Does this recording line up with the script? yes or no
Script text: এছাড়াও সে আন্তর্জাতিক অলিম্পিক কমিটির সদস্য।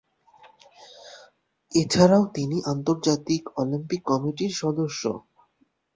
no